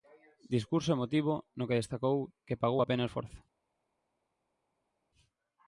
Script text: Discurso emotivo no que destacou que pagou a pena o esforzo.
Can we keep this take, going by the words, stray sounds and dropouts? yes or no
yes